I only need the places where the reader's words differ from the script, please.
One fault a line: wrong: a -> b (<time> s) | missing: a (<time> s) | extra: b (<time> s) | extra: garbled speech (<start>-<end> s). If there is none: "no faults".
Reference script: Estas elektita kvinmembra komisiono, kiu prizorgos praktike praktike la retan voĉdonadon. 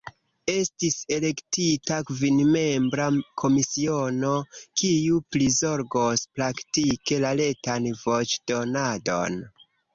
wrong: Estas -> Estis (0.5 s)
missing: praktike (7.2 s)